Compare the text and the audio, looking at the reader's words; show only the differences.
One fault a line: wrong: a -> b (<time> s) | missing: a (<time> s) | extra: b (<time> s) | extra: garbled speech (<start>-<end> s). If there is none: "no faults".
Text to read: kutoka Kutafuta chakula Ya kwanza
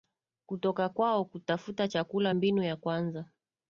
extra: kwao (0.9 s)
extra: Mbinu (2.3 s)